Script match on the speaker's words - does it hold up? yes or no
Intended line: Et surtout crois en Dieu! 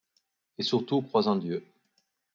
yes